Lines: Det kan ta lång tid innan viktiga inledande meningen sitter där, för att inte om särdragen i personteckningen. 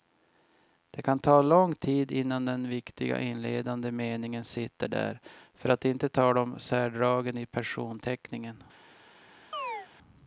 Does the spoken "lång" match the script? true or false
true